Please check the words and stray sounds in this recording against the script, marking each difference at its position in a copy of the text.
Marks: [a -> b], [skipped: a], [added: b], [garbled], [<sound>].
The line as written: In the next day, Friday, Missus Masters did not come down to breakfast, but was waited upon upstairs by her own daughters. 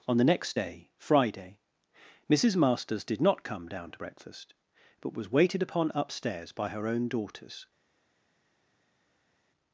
[In -> On] the next day, Friday, Missus Masters did not come down to breakfast, but was waited upon upstairs by her own daughters.